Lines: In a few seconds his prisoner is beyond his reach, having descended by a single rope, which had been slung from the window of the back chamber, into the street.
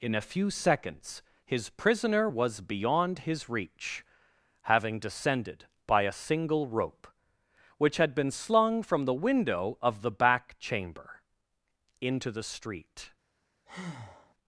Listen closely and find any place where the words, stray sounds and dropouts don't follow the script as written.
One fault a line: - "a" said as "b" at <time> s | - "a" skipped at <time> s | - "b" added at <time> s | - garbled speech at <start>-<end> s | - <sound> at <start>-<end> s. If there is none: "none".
- "is" said as "was" at 2.2 s
- breath at 13.7-14.3 s